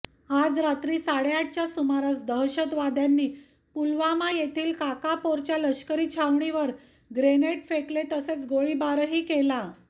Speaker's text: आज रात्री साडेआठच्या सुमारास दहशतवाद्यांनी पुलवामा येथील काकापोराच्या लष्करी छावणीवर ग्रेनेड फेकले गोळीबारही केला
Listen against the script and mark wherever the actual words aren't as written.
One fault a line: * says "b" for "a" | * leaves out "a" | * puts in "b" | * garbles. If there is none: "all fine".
* puts in "तसेच"